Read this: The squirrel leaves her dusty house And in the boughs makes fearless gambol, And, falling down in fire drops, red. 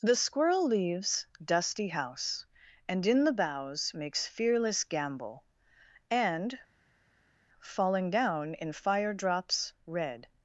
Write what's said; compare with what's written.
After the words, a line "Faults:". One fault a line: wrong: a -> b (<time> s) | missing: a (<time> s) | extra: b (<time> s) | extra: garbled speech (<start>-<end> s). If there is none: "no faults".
The squirrel leaves dusty house And in the boughs makes fearless gambol, And, falling down in fire drops, red.
Faults:
missing: her (1.3 s)